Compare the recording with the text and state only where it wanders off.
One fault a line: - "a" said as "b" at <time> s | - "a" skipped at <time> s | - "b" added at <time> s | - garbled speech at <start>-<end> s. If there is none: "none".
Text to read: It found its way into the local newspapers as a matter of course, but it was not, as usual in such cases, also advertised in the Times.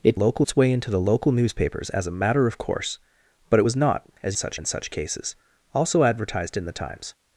- "found" said as "local" at 0.1 s
- "usual" said as "such" at 4.3 s